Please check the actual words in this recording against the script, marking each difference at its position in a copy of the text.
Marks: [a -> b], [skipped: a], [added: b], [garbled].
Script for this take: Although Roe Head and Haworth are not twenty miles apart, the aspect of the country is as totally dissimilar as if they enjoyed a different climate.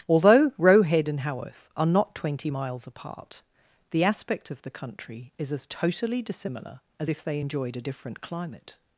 Although Roe Head and Haworth are not twenty miles apart, the aspect of the country is as totally dissimilar as if they enjoyed a different climate.